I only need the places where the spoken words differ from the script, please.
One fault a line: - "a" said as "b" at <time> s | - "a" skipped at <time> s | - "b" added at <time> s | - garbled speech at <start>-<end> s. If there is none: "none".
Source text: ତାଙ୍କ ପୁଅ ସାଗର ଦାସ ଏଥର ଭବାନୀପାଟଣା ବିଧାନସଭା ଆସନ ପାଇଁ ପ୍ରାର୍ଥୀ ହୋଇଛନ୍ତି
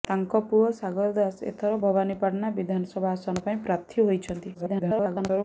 - garbled speech at 4.5-5.4 s